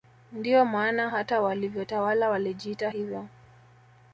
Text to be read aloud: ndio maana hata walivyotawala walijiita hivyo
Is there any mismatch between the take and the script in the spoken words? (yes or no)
no